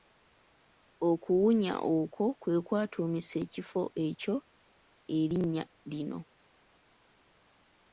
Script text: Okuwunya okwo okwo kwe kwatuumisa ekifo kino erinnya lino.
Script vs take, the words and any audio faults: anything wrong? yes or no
yes